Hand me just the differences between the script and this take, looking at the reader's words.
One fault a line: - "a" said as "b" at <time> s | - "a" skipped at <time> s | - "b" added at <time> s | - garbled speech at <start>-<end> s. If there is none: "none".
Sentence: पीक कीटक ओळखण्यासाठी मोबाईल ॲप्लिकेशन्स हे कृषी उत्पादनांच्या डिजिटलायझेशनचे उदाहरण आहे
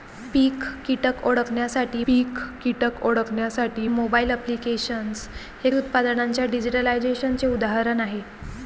- "पीक कीटक ओळखण्यासाठी" added at 2.1 s
- "कृषी" skipped at 5.7 s